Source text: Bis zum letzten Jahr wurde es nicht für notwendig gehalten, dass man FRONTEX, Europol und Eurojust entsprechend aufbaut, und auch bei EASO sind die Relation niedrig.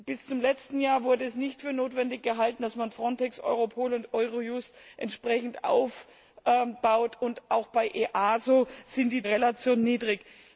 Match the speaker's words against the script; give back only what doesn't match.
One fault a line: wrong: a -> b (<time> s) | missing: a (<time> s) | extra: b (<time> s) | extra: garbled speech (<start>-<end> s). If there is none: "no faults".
no faults